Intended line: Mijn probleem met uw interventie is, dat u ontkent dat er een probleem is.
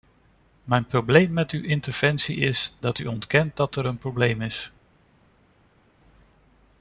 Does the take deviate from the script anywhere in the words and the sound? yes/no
no